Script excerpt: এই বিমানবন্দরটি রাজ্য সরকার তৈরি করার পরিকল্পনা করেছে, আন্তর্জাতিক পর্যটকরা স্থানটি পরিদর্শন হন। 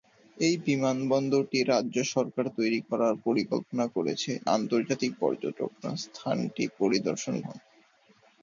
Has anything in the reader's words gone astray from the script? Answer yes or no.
no